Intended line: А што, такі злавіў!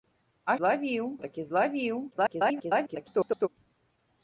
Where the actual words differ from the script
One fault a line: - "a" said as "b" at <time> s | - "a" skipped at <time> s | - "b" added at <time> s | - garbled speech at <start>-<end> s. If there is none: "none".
- "што" said as "злавіў" at 0.6 s
- garbled speech at 2.1-3.5 s